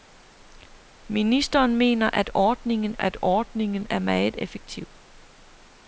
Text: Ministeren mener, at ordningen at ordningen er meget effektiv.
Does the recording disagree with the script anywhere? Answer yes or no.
no